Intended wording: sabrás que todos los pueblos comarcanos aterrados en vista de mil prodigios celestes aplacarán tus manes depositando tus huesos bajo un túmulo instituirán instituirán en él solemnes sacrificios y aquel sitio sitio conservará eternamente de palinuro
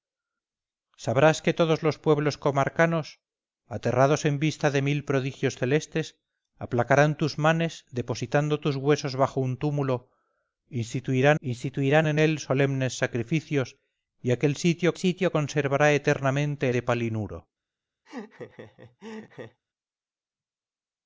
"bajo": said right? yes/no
yes